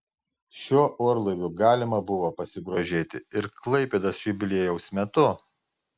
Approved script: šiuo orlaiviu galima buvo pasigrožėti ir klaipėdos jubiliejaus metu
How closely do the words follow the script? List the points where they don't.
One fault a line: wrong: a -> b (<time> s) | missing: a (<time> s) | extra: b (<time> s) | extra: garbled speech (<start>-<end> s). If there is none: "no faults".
no faults